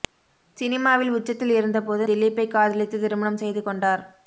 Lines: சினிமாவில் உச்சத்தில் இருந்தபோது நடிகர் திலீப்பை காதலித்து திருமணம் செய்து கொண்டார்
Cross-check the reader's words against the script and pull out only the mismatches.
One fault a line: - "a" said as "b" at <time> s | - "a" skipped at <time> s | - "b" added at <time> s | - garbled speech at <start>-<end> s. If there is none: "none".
- "நடிகர்" skipped at 2.0 s